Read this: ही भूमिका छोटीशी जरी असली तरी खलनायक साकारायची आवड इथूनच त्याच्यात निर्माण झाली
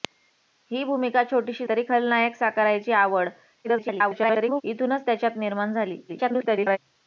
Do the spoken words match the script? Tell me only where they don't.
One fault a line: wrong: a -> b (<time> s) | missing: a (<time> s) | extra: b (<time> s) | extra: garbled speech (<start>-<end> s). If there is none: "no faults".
missing: जरी असली (1.7 s)
extra: garbled speech (3.6-4.6 s)
extra: garbled speech (6.1-6.8 s)